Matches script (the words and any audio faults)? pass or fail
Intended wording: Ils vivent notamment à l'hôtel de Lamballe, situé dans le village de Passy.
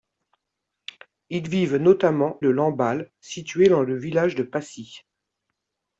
fail